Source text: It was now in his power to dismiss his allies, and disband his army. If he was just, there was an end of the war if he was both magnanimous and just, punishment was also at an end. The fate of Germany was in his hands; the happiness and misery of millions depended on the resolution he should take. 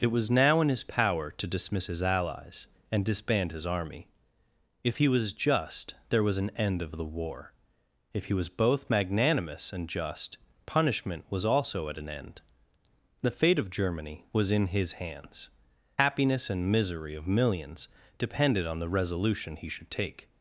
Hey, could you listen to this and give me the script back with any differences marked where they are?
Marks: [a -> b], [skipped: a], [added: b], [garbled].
It was now in his power to dismiss his allies, and disband his army. If he was just, there was an end of the war if he was both magnanimous and just, punishment was also at an end. The fate of Germany was in his hands; [skipped: the] happiness and misery of millions depended on the resolution he should take.